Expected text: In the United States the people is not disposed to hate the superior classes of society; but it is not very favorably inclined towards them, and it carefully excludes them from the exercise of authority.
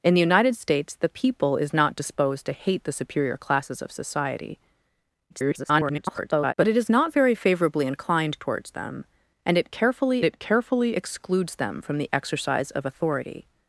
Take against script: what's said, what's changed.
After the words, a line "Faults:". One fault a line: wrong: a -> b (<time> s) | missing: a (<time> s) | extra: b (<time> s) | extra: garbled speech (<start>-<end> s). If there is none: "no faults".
In the United States the people is not disposed to hate the superior classes of society; [garbled] but it is not very favorably inclined towards them, and it carefully it carefully excludes them from the exercise of authority.
Faults:
extra: garbled speech (5.3-6.5 s)
extra: it carefully (10.2 s)